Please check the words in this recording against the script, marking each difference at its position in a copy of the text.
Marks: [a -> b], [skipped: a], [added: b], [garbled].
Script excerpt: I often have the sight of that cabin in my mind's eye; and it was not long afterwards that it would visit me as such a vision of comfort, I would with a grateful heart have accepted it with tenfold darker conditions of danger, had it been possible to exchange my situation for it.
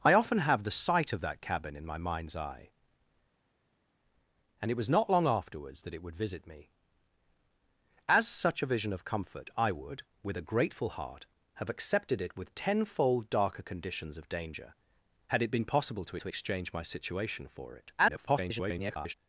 I often have the sight of that cabin in my mind's eye; and it was not long afterwards that it would visit me as such a vision of comfort, I would with a grateful heart have accepted it with tenfold darker conditions of danger, had it been possible to [added: to] exchange my situation for it. [garbled]